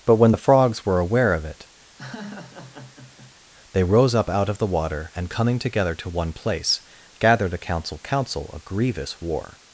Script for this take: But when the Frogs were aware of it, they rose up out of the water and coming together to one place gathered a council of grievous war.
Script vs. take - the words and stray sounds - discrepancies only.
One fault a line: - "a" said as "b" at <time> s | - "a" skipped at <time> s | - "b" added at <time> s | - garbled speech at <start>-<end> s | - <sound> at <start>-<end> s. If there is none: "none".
- laugh at 2.0-3.4 s
- "council" added at 8.0 s